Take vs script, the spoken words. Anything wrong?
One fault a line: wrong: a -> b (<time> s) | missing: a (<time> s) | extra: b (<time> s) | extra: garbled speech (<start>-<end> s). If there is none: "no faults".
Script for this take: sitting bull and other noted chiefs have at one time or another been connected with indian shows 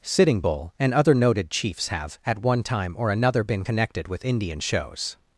no faults